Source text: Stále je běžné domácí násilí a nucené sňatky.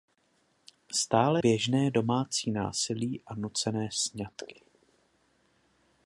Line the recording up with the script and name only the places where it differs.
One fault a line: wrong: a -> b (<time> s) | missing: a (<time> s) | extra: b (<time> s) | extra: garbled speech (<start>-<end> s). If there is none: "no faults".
missing: je (1.4 s)